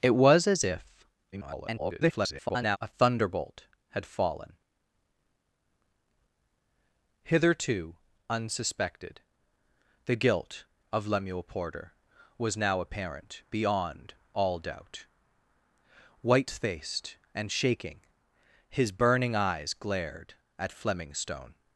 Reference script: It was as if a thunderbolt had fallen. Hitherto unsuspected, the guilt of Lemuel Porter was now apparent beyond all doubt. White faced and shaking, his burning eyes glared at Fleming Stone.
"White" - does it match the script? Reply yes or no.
yes